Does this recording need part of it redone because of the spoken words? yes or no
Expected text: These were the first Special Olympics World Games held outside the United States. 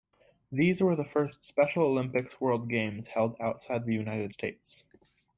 no